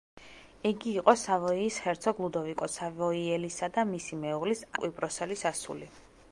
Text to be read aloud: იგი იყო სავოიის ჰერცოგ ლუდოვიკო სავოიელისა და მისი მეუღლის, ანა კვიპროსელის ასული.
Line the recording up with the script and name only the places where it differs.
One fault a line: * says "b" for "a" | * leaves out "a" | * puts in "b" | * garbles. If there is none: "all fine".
* leaves out "ანა"